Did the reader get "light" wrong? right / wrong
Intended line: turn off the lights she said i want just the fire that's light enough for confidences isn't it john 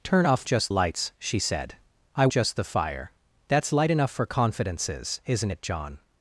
right